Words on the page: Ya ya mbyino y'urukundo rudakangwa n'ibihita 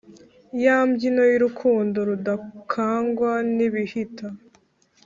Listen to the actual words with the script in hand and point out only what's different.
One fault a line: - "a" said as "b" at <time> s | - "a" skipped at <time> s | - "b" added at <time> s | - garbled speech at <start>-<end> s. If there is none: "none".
- "ya" skipped at 0.8 s